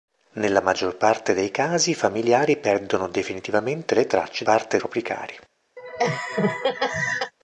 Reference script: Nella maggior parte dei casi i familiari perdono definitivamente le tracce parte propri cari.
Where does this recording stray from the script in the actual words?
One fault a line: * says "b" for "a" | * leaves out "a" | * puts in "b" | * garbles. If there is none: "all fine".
all fine